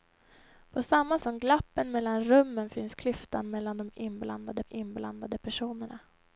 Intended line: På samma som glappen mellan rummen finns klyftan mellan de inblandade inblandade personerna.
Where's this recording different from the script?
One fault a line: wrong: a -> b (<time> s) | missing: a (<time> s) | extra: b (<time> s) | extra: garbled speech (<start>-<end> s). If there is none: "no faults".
no faults